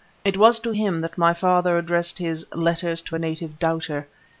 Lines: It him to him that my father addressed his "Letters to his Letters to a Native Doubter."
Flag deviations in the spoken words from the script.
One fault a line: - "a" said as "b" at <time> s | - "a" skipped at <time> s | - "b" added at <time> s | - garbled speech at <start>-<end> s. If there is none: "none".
- "him" said as "was" at 0.3 s
- "his Letters to" skipped at 3.2 s